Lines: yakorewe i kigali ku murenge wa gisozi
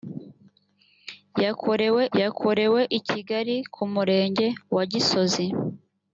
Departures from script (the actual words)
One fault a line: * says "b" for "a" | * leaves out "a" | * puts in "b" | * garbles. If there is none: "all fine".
* puts in "yakorewe"